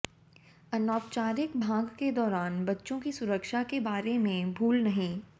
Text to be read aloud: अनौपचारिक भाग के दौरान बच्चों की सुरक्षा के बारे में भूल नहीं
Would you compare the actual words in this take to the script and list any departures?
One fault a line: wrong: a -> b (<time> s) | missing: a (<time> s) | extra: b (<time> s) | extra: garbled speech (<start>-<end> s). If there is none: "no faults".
no faults